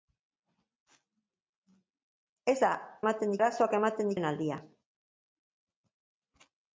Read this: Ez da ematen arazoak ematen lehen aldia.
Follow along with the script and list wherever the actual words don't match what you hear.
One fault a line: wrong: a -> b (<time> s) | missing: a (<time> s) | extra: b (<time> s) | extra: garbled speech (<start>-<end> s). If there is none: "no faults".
no faults